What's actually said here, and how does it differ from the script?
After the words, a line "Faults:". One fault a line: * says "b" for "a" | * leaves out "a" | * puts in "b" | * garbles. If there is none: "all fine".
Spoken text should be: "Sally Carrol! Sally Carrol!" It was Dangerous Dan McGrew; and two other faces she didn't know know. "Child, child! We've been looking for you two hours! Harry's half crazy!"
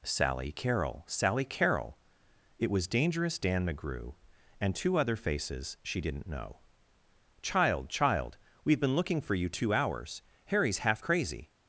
"Sally Carrol! Sally Carrol!" It was Dangerous Dan McGrew; and two other faces she didn't know. "Child, child! We've been looking for you two hours! Harry's half crazy!"
Faults:
* leaves out "know"